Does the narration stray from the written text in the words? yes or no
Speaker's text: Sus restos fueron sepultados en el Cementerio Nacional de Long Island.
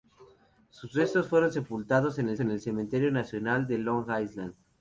yes